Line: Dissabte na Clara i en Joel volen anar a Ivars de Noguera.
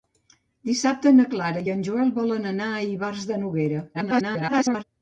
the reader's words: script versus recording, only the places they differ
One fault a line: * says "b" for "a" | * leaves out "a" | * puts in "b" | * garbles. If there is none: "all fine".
* garbles